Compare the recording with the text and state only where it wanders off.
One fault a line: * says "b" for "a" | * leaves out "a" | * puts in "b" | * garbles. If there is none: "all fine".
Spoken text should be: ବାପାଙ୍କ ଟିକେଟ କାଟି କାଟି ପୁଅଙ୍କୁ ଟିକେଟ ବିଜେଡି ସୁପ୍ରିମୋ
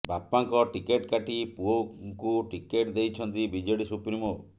* leaves out "କାଟି"
* puts in "ଦେଇଛନ୍ତି"